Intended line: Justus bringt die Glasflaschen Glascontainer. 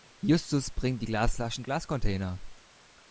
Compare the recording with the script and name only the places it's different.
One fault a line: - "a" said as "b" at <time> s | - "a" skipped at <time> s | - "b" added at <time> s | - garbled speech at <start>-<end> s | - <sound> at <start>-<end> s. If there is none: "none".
none